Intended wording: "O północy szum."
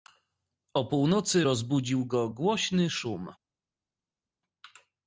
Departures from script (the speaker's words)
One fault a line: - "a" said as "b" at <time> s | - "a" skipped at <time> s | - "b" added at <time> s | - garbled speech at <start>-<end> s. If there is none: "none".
- "rozbudził go głośny" added at 1.4 s